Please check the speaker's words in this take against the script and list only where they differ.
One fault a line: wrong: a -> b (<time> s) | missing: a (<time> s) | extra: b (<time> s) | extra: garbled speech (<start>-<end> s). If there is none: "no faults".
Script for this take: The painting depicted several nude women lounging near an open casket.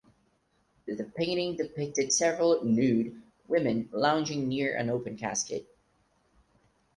no faults